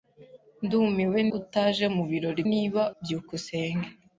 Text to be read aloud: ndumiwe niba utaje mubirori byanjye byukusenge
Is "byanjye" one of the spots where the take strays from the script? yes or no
yes